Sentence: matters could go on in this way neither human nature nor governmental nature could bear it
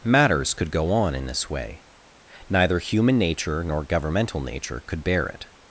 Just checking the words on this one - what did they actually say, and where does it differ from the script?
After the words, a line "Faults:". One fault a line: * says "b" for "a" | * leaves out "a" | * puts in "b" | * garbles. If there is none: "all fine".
matters could go on in this way neither human nature nor governmental nature could bear it
Faults:
all fine